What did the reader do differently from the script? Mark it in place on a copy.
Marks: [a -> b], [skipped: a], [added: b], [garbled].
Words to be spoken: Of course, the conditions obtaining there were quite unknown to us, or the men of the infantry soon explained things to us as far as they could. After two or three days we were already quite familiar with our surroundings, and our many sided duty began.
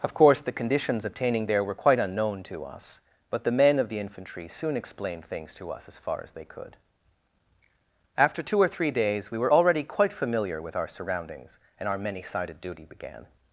Of course, the conditions obtaining there were quite unknown to us, [or -> but] the men of the infantry soon explained things to us as far as they could. After two or three days we were already quite familiar with our surroundings, and our many sided duty began.